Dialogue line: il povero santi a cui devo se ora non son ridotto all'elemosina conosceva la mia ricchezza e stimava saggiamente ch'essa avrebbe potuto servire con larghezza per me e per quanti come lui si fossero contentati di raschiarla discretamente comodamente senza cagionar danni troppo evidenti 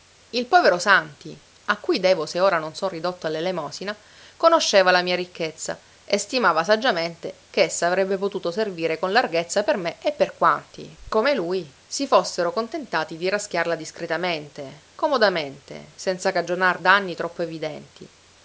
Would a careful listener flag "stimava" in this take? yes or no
no